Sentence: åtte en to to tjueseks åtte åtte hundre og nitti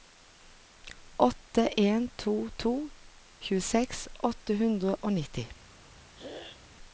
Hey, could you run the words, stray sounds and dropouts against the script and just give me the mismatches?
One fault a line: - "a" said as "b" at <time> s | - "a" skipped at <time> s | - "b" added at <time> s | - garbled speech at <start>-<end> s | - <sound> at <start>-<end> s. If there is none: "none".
- "åtte" skipped at 4.6 s
- throat clearing at 6.1-6.6 s